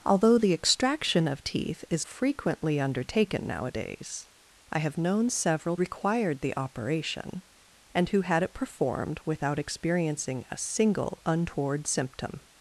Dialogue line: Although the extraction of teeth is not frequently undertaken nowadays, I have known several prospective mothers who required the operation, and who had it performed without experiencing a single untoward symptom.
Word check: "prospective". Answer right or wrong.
wrong